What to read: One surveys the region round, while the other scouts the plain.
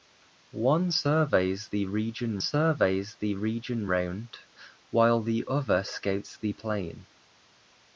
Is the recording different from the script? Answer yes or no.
yes